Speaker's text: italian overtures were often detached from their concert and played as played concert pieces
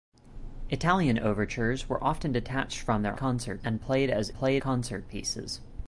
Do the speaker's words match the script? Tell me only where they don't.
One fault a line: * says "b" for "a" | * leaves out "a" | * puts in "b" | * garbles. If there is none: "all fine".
all fine